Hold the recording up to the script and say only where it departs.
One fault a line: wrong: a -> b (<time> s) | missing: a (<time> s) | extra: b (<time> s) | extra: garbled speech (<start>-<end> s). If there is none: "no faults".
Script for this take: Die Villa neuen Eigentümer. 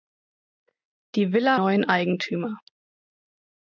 no faults